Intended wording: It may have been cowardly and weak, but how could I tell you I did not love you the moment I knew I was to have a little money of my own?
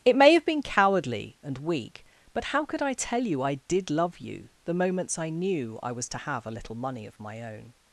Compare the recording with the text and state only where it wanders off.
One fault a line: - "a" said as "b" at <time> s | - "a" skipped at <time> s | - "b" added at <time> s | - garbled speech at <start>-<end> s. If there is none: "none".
- "not" skipped at 3.9 s
- "moment" said as "moments" at 4.7 s